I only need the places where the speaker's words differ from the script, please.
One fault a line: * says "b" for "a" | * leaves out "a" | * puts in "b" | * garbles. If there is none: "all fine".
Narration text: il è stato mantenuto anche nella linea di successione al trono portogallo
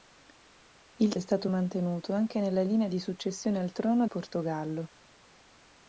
all fine